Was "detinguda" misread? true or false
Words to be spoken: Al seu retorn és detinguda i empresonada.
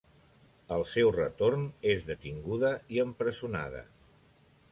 false